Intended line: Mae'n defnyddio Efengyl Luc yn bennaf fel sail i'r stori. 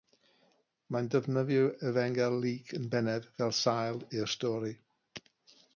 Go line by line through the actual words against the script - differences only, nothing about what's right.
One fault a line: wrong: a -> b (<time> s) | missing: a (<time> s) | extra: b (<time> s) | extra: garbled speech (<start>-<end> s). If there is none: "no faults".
no faults